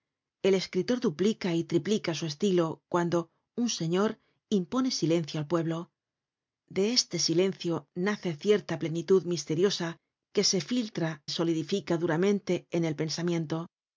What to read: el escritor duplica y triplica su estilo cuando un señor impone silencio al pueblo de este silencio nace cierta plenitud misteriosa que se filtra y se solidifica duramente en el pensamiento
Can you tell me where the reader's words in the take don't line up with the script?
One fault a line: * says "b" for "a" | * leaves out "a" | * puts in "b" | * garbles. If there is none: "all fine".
* leaves out "y se"